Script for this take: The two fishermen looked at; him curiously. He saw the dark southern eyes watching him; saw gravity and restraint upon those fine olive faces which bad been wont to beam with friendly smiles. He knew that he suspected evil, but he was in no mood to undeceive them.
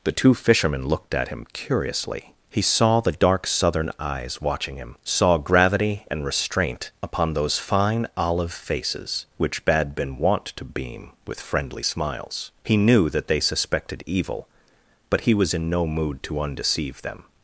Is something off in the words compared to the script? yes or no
yes